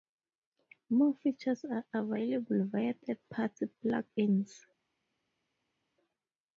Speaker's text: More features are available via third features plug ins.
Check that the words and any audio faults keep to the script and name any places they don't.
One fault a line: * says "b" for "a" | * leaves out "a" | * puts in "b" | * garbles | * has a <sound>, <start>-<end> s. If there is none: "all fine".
* says "party" for "features"